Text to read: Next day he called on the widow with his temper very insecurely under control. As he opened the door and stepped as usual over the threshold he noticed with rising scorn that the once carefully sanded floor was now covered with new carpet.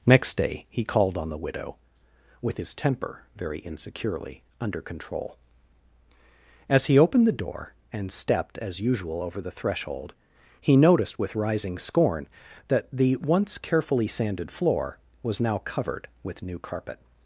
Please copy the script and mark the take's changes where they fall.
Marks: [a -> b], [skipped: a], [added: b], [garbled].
Next day he called on the widow with his temper very insecurely under control. As he opened the door and stepped as usual over the threshold he noticed with rising scorn that the once carefully sanded floor was now covered with new carpet.